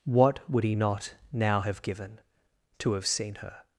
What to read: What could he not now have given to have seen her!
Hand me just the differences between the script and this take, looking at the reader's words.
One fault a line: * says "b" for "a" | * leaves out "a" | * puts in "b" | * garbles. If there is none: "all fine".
* says "would" for "could"